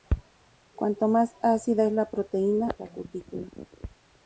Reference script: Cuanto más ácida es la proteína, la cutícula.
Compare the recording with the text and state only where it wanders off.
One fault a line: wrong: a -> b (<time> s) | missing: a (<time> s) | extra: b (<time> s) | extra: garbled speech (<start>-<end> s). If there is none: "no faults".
no faults